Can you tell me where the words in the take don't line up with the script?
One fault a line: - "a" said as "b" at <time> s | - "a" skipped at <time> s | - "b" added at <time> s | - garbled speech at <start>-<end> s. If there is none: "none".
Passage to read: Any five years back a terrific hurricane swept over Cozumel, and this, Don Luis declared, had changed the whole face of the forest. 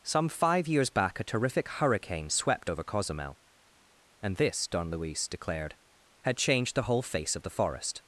- "Any" said as "Some" at 0.0 s